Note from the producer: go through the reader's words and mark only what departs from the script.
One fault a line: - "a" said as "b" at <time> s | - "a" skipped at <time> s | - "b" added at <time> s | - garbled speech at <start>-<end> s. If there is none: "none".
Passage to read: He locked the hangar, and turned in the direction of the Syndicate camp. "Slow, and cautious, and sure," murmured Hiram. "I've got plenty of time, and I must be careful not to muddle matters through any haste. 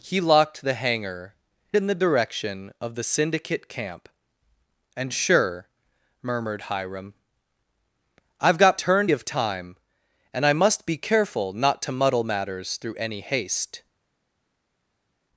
- "and turned" skipped at 1.4 s
- "Slow" skipped at 4.1 s
- "cautious and" skipped at 5.1 s
- "plenty" said as "turned" at 8.8 s